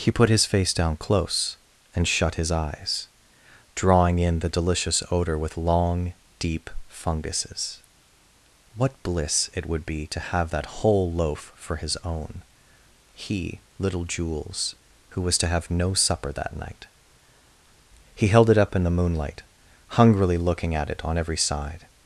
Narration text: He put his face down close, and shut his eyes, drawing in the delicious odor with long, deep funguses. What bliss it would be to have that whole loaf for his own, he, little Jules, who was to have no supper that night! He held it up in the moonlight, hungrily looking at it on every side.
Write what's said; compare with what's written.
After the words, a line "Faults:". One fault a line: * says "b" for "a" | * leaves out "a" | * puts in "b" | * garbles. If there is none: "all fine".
He put his face down close, and shut his eyes, drawing in the delicious odor with long, deep funguses. What bliss it would be to have that whole loaf for his own, he, little Jules, who was to have no supper that night! He held it up in the moonlight, hungrily looking at it on every side.
Faults:
all fine